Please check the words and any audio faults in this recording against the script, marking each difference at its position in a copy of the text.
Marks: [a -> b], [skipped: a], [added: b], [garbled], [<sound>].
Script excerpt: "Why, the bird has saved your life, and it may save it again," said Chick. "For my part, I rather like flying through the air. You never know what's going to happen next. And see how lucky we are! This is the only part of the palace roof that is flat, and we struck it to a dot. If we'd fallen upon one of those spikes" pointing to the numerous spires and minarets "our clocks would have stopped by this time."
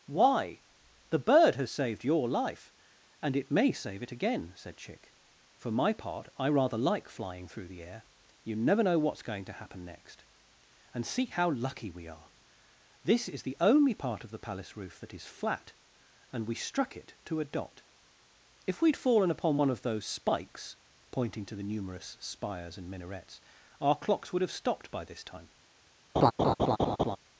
"Why, the bird has saved your life, and it may save it again," said Chick. "For my part, I rather like flying through the air. You never know what's going to happen next. And see how lucky we are! This is the only part of the palace roof that is flat, and we struck it to a dot. If we'd fallen upon one of those spikes" pointing to the numerous spires and minarets "our clocks would have stopped by this time." [laugh]